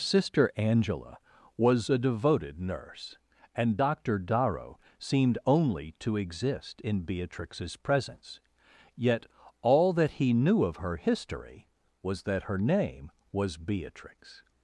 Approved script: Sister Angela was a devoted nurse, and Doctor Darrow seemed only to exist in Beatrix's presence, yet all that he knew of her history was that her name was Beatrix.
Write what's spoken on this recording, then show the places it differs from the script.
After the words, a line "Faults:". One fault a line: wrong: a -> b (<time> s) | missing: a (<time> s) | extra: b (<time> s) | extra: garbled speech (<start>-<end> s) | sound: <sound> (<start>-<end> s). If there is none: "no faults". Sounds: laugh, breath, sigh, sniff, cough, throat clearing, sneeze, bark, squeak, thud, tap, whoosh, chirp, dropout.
Sister Angela was a devoted nurse, and Doctor Darrow seemed only to exist in Beatrix's presence, yet all that he knew of her history was that her name was Beatrix.
Faults:
no faults